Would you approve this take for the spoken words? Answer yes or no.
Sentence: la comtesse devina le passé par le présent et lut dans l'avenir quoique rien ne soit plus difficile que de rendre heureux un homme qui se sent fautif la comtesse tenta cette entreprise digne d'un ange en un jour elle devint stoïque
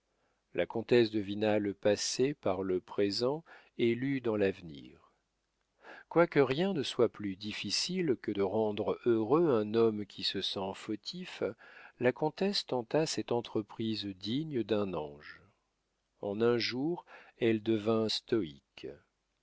yes